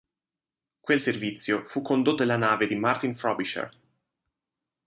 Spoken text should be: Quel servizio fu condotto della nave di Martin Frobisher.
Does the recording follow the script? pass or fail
pass